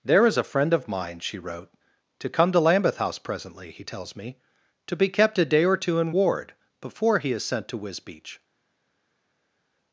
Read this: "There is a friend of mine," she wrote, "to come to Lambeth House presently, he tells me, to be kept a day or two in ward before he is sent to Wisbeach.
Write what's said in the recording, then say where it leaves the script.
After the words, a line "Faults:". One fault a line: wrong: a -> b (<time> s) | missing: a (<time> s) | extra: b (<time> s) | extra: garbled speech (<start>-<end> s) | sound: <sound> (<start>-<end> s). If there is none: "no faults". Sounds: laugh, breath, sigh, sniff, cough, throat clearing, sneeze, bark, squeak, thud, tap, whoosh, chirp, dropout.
"There is a friend of mine," she wrote, "to come to Lambeth House presently, he tells me, to be kept a day or two in ward before he is sent to Wisbeach.
Faults:
no faults